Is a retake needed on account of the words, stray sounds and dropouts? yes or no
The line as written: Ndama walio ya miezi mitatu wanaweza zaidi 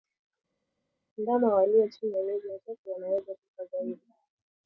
yes